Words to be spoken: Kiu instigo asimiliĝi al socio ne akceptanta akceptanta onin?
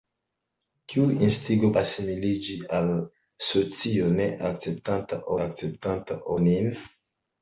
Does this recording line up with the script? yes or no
yes